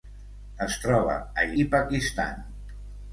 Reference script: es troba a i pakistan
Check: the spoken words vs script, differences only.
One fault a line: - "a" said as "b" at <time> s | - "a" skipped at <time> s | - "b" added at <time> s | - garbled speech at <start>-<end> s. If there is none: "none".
none